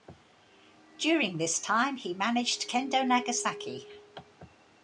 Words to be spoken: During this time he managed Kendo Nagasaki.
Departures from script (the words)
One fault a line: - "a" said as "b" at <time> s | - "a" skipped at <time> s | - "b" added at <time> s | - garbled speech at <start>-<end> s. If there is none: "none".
none